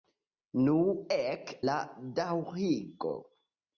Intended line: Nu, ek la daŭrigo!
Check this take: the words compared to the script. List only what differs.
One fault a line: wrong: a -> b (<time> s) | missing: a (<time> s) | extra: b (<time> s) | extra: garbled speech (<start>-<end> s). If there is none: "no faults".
no faults